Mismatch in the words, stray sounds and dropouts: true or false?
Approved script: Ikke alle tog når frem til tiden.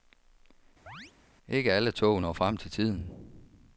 true